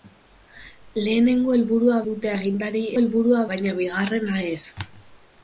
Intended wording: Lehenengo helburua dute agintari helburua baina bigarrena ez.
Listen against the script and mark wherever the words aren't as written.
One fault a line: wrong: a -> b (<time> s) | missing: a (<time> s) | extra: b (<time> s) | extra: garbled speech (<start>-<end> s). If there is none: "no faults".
no faults